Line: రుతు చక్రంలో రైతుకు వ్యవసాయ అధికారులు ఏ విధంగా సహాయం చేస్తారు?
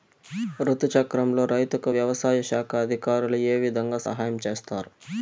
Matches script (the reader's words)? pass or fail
fail